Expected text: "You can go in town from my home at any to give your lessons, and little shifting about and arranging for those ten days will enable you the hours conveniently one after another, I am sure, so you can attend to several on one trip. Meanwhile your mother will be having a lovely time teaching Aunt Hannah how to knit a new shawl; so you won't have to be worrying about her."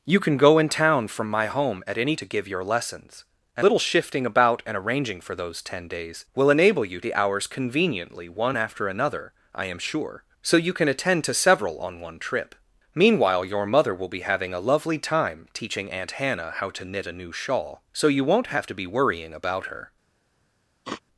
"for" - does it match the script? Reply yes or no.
yes